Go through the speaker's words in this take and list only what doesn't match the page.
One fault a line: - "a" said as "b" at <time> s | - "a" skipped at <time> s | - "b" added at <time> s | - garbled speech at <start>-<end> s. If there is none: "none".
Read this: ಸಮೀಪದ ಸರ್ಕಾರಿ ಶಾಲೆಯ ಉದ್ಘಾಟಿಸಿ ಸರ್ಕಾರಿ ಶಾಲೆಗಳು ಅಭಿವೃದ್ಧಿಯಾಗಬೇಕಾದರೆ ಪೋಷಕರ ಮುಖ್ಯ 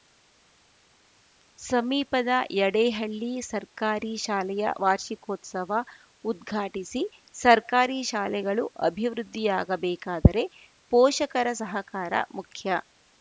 - "ಯಡೇಹಳ್ಳಿ" added at 2.5 s
- "ವಾರ್ಷಿಕೋತ್ಸವ" added at 4.8 s
- "ಸಹಕಾರ" added at 11.6 s